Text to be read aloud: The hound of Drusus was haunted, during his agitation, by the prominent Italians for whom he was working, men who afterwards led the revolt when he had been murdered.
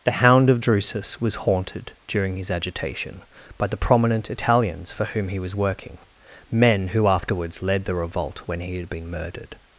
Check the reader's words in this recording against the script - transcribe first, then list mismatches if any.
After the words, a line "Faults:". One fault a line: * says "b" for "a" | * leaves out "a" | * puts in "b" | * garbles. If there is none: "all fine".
The hound of Drusus was haunted, during his agitation, by the prominent Italians for whom he was working, men who afterwards led the revolt when he had been murdered.
Faults:
all fine